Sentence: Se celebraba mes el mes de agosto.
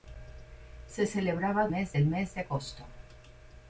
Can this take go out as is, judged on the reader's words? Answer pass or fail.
pass